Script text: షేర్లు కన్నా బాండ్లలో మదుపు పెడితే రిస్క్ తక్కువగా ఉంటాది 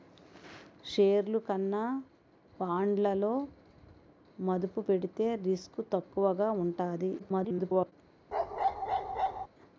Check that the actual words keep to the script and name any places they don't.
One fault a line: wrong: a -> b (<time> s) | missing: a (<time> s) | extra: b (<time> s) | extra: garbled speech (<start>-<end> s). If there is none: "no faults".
extra: garbled speech (7.2-7.9 s)